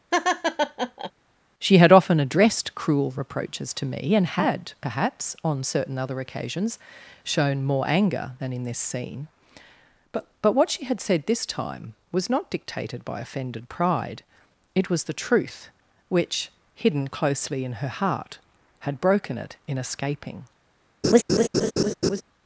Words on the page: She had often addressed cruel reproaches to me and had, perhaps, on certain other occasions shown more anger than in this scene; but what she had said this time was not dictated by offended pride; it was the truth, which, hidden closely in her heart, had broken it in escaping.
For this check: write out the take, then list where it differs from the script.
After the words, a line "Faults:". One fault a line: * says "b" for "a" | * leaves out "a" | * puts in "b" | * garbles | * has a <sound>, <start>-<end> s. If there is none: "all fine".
She had often addressed cruel reproaches to me and had, perhaps, on certain other occasions shown more anger than in this scene; but but what she had said this time was not dictated by offended pride; it was the truth, which, hidden closely in her heart, had broken it in escaping.
Faults:
* has a laugh, 0.1-1.1 s
* puts in "but"
* has a laugh, 21.0-22.2 s